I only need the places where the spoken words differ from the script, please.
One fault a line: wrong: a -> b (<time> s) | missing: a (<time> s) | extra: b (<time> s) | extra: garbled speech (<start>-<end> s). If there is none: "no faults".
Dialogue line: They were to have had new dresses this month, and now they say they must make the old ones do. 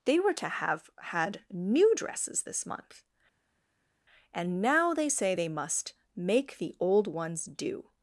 no faults